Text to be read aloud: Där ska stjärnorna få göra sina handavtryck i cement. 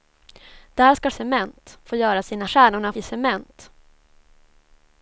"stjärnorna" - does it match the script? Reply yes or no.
no